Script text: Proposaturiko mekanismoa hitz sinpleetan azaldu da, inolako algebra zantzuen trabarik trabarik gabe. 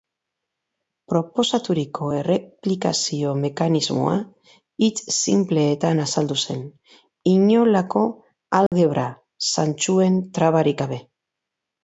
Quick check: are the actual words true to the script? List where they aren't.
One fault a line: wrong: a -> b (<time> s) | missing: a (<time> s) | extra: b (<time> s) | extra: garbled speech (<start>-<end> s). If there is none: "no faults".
extra: erreplikazio (2.2 s)
wrong: da -> zen (6.5 s)
missing: trabarik (10.8 s)